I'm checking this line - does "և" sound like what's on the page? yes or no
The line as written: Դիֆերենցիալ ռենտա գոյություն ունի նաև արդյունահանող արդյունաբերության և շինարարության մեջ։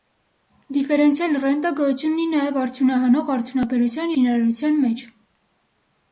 no